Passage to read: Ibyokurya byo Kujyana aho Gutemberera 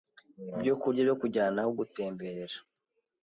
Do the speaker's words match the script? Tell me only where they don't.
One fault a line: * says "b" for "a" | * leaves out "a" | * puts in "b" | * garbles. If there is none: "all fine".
all fine